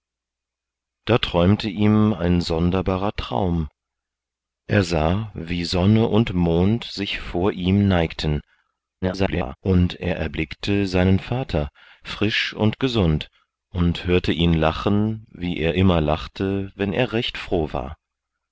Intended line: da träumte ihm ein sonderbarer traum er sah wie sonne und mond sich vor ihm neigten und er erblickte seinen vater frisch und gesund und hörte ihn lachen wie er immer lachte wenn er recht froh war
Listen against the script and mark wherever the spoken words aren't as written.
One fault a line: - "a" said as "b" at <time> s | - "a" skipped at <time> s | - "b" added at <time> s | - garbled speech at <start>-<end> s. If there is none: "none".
- garbled speech at 9.0-9.6 s